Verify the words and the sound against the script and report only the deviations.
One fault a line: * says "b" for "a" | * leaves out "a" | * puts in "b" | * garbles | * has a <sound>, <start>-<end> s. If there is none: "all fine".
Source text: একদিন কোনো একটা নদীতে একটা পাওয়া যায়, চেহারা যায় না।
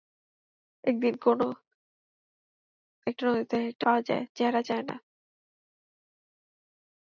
all fine